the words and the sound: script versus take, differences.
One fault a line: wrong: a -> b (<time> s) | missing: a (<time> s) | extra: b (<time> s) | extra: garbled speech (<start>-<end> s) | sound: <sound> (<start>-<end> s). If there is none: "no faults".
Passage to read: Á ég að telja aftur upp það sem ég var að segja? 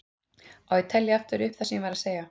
no faults